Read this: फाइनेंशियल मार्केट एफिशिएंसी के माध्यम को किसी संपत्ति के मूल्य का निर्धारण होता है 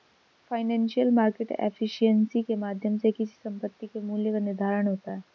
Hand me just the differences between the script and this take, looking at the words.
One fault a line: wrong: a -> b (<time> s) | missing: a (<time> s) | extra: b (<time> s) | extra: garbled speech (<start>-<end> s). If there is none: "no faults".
wrong: को -> से (3.0 s)